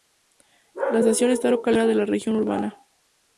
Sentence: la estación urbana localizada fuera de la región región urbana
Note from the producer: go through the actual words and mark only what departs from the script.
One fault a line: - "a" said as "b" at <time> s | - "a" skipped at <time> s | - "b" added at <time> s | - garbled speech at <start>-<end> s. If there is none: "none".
- "urbana" said as "está" at 1.3 s
- "región" skipped at 2.4 s